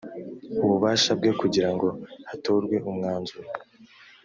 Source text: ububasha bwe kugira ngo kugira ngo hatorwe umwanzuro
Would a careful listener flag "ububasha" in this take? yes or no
no